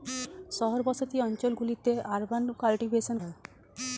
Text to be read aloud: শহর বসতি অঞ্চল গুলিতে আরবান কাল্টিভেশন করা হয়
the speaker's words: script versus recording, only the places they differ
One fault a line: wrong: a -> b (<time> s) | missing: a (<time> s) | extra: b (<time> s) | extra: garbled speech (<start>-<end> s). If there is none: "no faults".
missing: করা (3.1 s)